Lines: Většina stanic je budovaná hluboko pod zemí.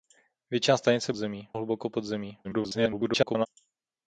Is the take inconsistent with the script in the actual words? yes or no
yes